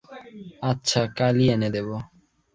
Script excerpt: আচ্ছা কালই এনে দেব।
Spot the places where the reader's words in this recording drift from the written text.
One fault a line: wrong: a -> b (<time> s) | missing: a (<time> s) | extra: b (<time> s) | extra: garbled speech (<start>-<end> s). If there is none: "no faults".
no faults